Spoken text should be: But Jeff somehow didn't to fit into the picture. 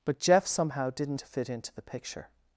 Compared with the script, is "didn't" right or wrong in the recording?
right